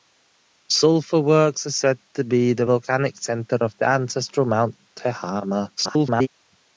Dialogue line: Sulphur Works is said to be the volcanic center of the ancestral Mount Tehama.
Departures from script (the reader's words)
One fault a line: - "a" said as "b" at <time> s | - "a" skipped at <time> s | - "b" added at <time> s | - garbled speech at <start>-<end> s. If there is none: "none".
- garbled speech at 5.8-6.3 s